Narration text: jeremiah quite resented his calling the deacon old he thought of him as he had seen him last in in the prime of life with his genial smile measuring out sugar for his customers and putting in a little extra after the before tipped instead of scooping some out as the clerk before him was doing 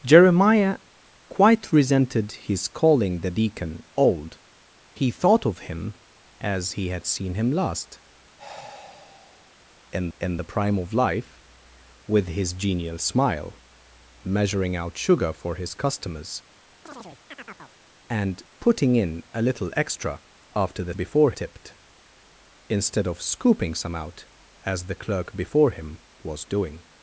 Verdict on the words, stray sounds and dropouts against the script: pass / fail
fail